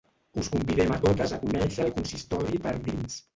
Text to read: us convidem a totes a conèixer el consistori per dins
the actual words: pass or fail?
pass